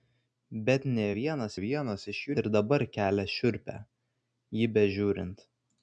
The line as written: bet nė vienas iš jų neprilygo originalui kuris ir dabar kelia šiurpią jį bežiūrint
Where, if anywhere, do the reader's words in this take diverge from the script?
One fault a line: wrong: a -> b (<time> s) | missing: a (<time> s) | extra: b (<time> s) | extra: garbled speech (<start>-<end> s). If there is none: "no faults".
extra: vienas (1.6 s)
missing: neprilygo originalui kuris (2.4 s)